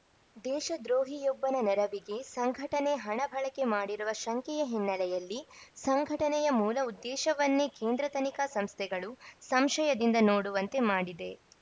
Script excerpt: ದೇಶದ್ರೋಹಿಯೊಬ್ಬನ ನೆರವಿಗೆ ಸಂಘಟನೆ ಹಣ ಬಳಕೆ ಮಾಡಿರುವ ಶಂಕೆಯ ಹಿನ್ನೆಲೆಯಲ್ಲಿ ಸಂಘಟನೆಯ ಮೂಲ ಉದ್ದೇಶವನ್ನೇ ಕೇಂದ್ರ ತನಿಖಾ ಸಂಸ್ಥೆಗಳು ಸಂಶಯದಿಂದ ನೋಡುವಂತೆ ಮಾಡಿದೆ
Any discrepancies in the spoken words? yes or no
no